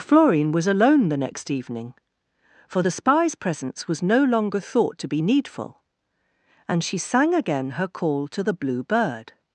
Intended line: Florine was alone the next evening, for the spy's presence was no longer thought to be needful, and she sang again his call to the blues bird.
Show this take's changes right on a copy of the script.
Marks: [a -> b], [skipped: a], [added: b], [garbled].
Florine was alone the next evening, for the spy's presence was no longer thought to be needful, and she sang again [his -> her] call to the [blues -> blue] bird.